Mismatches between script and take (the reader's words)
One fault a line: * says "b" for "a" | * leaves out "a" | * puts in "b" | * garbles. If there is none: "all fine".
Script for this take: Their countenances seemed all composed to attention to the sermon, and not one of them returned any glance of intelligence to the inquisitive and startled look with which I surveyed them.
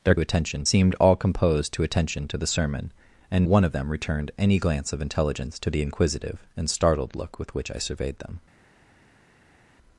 * says "attention" for "countenances"
* leaves out "not"